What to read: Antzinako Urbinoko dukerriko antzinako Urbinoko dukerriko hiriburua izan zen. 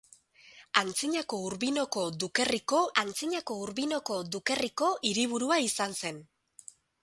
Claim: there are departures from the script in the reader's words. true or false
false